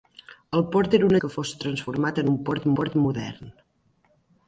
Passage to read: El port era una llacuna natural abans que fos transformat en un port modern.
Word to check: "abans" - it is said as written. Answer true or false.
false